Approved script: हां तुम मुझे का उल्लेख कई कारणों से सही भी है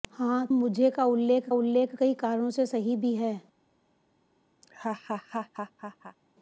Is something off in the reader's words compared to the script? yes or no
yes